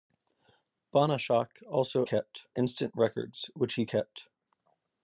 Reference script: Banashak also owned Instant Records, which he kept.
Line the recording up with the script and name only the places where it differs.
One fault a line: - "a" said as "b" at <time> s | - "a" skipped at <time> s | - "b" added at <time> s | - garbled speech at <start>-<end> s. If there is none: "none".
- "owned" said as "kept" at 2.0 s